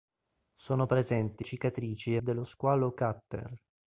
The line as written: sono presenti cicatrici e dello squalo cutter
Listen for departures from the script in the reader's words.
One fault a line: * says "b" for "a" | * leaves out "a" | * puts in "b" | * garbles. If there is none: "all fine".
all fine